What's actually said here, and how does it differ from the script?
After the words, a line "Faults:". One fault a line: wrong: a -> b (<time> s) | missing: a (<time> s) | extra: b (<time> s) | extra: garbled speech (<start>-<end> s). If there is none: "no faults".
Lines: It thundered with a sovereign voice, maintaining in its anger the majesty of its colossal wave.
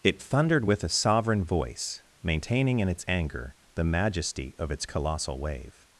It thundered with a sovereign voice, maintaining in its anger the majesty of its colossal wave.
Faults:
no faults